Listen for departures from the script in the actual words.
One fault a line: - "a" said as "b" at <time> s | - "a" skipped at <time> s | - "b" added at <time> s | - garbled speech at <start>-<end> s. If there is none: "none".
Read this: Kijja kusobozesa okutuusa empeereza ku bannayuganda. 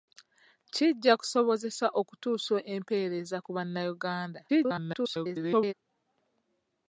- garbled speech at 4.5-5.7 s